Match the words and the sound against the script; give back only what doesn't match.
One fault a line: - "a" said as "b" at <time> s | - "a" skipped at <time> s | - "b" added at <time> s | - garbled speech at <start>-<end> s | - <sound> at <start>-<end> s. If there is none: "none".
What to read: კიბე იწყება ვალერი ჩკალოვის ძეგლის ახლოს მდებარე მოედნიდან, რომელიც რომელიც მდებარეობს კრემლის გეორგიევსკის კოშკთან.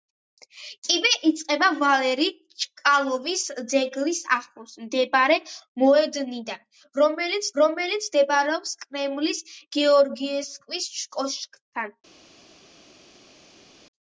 none